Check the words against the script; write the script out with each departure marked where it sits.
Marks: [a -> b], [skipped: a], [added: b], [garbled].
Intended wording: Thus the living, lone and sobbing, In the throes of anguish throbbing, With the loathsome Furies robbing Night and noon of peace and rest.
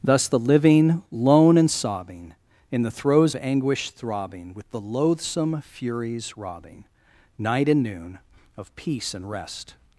Thus the living, lone and sobbing, In the throes [skipped: of] anguish throbbing, With the loathsome Furies robbing Night and noon of peace and rest.